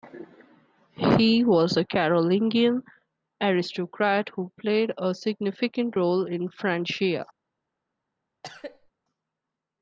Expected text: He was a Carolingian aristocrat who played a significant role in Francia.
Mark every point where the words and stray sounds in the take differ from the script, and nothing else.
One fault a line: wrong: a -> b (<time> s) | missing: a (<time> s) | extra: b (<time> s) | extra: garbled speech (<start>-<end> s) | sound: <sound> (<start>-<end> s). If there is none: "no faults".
sound: cough (8.4-8.9 s)